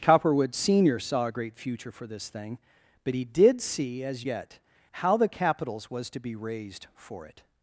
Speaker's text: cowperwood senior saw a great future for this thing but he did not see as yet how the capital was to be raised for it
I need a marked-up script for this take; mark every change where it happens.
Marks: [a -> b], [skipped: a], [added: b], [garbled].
cowperwood senior saw a great future for this thing but he did [skipped: not] see as yet how the [capital -> capitals] was to be raised for it